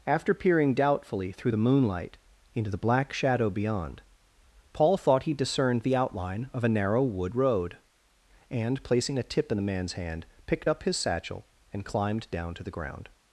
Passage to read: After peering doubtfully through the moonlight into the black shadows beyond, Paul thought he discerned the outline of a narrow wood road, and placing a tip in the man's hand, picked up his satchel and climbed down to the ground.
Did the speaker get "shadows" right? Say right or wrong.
wrong